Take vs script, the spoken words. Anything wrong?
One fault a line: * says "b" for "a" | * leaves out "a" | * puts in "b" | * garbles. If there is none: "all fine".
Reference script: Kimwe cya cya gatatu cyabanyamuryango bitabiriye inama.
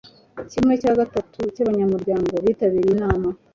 * leaves out "cya"